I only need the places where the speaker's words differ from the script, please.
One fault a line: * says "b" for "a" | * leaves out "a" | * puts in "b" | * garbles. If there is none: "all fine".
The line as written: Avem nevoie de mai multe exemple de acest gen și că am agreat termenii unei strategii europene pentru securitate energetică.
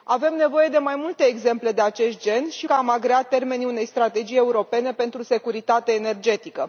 all fine